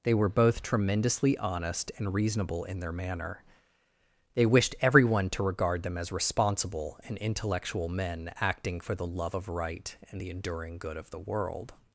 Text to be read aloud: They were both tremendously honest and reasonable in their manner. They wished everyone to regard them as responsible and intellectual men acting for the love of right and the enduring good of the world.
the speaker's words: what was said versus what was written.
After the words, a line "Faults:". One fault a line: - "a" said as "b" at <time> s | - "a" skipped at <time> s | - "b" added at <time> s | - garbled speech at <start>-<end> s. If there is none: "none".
They were both tremendously honest and reasonable in their manner. They wished everyone to regard them as responsible and intellectual men acting for the love of right and the enduring good of the world.
Faults:
none